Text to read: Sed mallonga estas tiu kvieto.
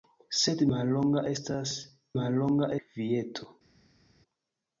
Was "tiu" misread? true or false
true